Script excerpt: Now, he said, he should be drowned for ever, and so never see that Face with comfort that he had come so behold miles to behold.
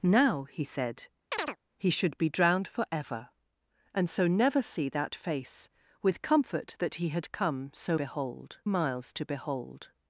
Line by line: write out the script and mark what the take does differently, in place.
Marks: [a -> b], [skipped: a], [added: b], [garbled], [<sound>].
Now, he said, [chirp] he should be drowned for ever, and so never see that Face with comfort that he had come so behold miles to behold.